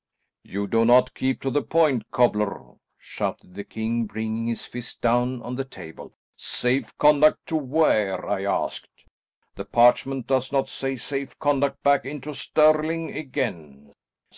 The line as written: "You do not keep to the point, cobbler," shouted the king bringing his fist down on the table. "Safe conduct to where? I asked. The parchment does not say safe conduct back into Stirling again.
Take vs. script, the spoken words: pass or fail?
pass